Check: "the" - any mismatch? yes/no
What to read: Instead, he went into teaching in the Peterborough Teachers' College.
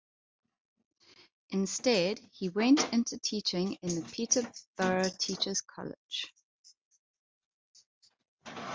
no